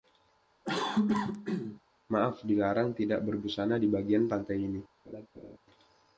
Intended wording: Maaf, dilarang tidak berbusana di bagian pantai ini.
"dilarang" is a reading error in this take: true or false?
false